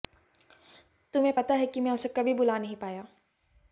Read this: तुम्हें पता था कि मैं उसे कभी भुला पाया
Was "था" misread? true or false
true